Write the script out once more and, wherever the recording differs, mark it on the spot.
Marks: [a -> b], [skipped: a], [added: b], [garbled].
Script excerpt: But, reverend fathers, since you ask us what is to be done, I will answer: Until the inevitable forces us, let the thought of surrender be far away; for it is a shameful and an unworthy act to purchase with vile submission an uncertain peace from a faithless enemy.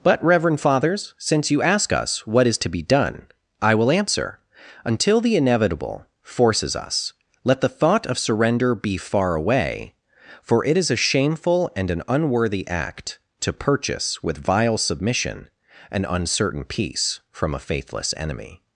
But, reverend fathers, since you ask us what is to be done, I will answer: Until the inevitable forces us, let the thought of surrender be far away; for it is a shameful and an unworthy act to purchase with vile submission an uncertain peace from a faithless enemy.